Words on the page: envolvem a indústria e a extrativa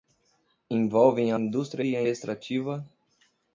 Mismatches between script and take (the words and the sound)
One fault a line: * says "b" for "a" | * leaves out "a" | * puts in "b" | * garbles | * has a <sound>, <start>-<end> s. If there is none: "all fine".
all fine